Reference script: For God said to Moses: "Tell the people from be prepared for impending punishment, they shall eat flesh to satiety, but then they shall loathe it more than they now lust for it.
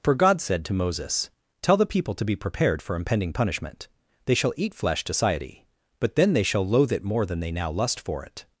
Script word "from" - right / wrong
wrong